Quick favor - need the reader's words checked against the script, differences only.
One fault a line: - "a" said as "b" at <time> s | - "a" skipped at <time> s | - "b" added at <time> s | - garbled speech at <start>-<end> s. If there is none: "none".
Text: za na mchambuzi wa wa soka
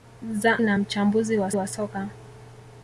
none